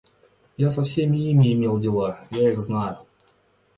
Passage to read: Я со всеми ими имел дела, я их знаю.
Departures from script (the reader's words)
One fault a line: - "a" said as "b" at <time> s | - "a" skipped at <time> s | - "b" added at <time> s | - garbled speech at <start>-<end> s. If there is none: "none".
none